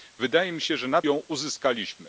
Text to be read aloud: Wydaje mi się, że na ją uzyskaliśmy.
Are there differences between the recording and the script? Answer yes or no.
no